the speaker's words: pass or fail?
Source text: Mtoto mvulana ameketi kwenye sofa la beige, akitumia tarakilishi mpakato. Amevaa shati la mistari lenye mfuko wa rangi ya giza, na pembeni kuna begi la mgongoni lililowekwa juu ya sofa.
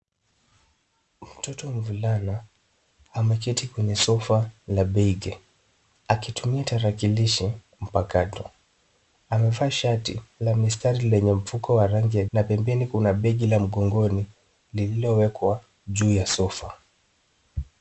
fail